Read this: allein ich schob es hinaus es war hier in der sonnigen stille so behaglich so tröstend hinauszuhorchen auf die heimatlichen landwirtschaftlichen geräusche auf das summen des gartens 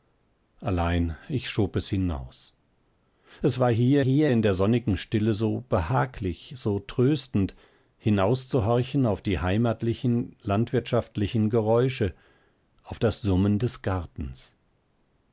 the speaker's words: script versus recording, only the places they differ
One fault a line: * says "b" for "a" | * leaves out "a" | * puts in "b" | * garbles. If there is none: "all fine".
* puts in "hier"